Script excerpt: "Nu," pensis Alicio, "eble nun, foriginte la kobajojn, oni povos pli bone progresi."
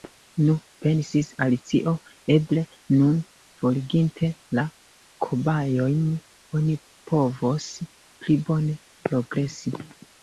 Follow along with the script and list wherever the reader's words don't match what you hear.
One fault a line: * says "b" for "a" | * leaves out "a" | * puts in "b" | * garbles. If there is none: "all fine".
all fine